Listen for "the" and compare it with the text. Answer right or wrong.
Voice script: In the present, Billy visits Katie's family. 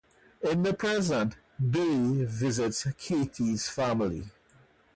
right